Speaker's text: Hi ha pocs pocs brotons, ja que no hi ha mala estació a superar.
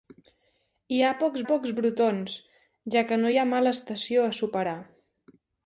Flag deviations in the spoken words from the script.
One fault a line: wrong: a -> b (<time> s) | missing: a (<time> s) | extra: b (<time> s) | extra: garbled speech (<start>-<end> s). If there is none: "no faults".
no faults